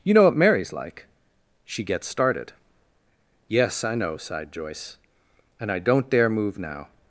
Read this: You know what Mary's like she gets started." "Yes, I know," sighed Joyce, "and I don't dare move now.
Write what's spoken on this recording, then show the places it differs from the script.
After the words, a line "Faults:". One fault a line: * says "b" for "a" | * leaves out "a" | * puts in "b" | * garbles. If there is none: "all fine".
You know what Mary's like she gets started." "Yes, I know," sighed Joyce, "and I don't dare move now.
Faults:
all fine